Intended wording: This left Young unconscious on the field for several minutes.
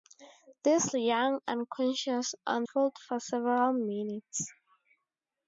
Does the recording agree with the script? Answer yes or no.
no